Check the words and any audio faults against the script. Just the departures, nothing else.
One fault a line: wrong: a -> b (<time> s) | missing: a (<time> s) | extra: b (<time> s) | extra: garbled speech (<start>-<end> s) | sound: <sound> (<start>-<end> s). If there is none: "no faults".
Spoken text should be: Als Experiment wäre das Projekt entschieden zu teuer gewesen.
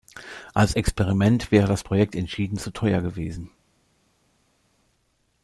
no faults